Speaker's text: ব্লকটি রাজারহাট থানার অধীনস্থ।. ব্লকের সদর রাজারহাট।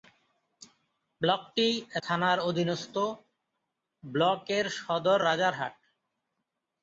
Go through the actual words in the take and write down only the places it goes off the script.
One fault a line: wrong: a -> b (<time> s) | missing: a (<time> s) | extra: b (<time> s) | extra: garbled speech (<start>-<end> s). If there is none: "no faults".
missing: রাজারহাট (1.7 s)